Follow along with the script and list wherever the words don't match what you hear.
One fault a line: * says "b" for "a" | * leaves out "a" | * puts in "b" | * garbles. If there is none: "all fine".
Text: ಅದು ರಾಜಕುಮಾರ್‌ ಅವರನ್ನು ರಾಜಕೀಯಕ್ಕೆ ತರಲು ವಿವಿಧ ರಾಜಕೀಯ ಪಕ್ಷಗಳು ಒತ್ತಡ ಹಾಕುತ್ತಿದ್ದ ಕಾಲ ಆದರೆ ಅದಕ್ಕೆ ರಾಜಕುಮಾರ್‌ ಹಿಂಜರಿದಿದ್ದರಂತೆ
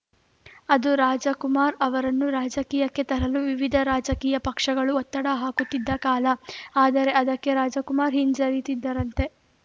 all fine